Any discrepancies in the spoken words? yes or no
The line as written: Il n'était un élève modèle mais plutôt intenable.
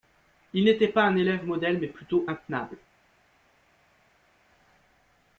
yes